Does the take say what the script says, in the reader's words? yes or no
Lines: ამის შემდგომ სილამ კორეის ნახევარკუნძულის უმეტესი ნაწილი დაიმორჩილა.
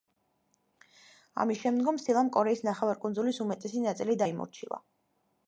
yes